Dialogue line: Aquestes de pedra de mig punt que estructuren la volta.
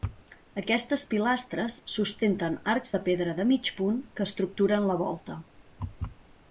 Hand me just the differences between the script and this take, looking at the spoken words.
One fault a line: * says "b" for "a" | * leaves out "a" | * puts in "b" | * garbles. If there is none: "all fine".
* puts in "pilastres sustenten arcs"